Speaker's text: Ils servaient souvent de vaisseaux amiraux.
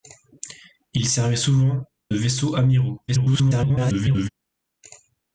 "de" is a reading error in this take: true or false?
true